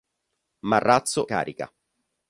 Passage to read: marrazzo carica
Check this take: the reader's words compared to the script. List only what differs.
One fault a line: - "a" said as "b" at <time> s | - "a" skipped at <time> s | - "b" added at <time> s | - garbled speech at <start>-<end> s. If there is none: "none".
none